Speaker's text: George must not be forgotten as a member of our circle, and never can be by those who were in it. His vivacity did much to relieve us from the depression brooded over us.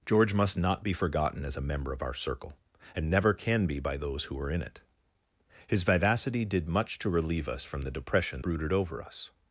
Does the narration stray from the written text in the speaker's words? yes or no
no